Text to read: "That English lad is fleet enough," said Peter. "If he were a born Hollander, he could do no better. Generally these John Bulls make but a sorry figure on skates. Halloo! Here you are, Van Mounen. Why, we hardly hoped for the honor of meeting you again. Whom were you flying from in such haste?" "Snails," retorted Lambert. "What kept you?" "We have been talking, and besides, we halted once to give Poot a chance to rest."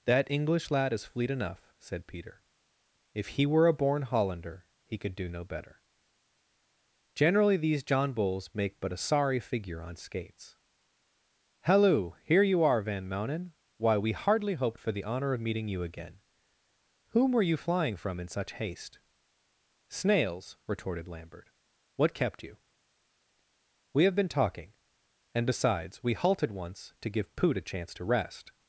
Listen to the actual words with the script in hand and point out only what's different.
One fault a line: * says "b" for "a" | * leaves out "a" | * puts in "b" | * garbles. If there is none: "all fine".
all fine